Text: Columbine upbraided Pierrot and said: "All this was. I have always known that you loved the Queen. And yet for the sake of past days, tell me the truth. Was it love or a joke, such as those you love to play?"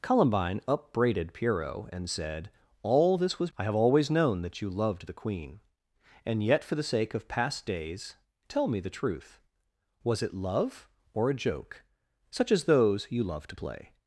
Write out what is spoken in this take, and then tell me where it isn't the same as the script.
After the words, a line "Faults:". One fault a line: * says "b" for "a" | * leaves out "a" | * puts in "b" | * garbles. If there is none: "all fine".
Columbine upbraided Pierrot and said: "All this was. I have always known that you loved the Queen. And yet for the sake of past days, tell me the truth. Was it love or a joke, such as those you love to play?"
Faults:
all fine